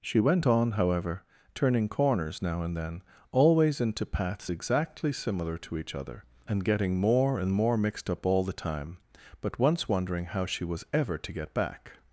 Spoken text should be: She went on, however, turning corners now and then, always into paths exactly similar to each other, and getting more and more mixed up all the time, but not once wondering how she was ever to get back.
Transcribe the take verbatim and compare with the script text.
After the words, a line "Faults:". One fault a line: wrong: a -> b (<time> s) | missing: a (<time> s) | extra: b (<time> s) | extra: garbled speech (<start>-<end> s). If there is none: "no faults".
She went on, however, turning corners now and then, always into paths exactly similar to each other, and getting more and more mixed up all the time, but once wondering how she was ever to get back.
Faults:
missing: not (9.6 s)